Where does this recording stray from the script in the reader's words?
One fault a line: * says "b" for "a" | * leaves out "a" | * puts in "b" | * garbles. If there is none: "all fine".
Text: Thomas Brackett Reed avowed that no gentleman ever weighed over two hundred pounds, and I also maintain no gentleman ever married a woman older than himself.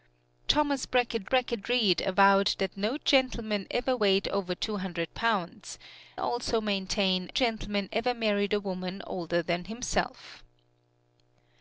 * puts in "Brackett"
* leaves out "and I"
* leaves out "no"